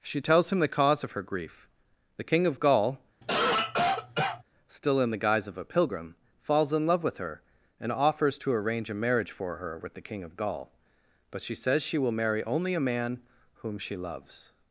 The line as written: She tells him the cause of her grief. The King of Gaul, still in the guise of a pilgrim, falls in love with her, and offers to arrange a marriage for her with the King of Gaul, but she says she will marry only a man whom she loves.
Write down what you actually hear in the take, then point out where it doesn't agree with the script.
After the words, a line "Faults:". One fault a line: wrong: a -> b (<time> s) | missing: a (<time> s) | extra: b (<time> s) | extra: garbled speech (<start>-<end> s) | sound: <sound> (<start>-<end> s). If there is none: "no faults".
She tells him the cause of her grief. The King of Gaul, still in the guise of a pilgrim, falls in love with her, and offers to arrange a marriage for her with the King of Gaul, but she says she will marry only a man whom she loves.
Faults:
sound: cough (3.2-4.4 s)